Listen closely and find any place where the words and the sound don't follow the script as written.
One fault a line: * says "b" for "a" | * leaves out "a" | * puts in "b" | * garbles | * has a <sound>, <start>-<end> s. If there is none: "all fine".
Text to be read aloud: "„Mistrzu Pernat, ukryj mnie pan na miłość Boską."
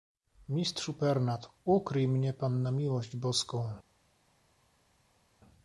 all fine